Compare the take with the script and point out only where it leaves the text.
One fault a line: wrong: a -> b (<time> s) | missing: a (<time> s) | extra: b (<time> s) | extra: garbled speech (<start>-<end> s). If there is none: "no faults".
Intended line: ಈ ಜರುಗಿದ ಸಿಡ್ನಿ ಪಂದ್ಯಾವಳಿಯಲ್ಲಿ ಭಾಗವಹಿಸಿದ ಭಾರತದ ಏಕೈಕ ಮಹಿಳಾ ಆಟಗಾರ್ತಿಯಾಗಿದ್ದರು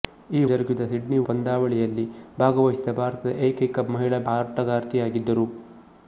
no faults